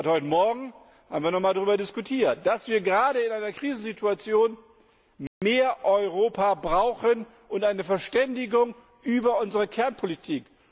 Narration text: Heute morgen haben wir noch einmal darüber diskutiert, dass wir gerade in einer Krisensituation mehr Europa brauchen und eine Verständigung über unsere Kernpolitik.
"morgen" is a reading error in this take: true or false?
false